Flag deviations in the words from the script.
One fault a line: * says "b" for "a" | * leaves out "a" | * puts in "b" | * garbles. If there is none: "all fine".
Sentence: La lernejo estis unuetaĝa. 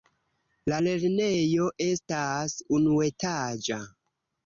* says "estas" for "estis"